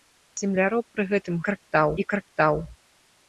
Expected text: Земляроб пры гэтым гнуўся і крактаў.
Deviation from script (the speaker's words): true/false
true